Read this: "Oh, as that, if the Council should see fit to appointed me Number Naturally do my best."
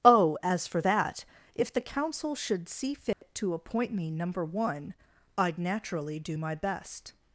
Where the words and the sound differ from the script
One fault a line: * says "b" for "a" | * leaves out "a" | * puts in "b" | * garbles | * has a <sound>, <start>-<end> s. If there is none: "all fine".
* puts in "for"
* has a dropout, 3.1-3.2 s
* says "appoint" for "appointed"
* puts in "One I'd"